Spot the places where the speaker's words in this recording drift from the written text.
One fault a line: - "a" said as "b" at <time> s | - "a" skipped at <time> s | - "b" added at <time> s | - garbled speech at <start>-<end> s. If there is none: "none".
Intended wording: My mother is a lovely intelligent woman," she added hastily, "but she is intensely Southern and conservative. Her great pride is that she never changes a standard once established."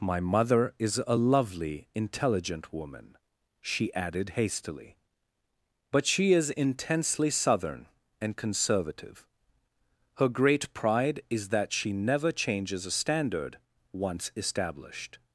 none